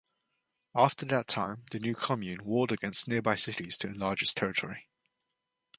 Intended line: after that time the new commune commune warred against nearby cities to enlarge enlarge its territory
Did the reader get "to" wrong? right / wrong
right